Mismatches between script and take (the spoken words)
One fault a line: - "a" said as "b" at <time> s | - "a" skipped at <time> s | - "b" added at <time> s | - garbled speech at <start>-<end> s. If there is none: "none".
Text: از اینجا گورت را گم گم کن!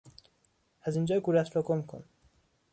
- "گم" skipped at 1.8 s